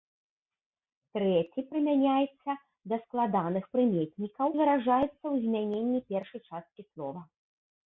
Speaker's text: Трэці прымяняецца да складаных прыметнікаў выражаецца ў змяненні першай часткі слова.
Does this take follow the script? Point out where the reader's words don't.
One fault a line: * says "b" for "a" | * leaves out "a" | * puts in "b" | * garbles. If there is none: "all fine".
all fine